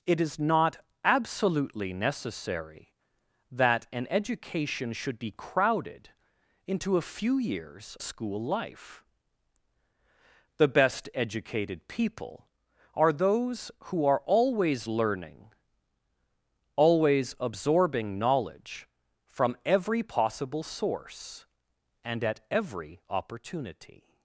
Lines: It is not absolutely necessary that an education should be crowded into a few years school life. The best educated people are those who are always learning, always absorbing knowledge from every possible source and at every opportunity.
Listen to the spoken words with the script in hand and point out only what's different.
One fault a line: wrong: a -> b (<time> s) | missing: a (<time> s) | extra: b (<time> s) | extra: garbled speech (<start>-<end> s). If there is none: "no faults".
no faults